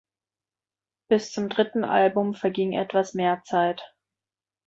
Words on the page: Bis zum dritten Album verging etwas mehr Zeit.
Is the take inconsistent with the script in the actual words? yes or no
no